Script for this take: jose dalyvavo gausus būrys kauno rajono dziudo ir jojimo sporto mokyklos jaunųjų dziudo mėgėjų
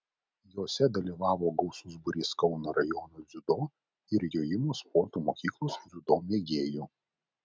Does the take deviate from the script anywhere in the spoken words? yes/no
yes